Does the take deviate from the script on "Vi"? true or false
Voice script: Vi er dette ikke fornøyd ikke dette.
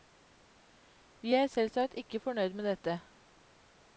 false